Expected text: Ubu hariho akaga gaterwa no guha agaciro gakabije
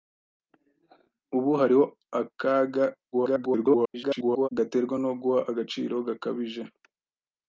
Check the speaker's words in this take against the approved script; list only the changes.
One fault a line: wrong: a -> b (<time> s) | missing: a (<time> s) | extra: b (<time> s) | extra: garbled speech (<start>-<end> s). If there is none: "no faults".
extra: garbled speech (3.1-4.5 s)